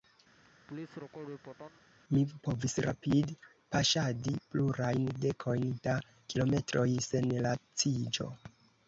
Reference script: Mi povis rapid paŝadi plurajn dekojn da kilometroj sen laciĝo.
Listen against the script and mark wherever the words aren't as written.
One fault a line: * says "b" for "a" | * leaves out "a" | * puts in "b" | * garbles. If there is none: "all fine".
all fine